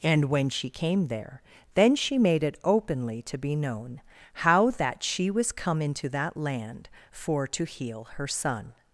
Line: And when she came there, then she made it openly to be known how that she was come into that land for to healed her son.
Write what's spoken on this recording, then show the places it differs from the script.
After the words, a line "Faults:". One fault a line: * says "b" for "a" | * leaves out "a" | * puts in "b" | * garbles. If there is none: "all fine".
And when she came there, then she made it openly to be known how that she was come into that land for to heal her son.
Faults:
* says "heal" for "healed"